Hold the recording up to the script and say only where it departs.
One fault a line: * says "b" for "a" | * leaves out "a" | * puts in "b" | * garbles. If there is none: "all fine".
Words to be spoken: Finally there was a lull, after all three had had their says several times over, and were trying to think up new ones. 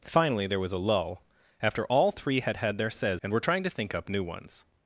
* leaves out "several times over"